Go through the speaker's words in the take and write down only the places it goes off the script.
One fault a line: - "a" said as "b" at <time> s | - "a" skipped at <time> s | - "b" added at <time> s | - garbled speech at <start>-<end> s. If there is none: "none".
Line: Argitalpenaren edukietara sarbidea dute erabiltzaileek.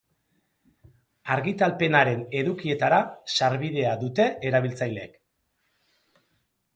none